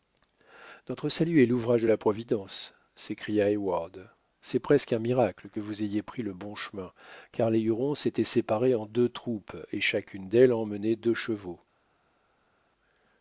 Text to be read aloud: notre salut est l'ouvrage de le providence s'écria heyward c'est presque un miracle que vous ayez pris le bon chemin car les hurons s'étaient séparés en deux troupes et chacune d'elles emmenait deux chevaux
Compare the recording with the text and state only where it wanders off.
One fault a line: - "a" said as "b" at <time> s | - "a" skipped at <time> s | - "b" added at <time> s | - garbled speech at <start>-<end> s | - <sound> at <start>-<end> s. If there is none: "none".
- "le" said as "la" at 1.9 s